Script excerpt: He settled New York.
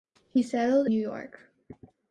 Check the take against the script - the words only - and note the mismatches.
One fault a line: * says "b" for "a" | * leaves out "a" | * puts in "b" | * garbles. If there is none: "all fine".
all fine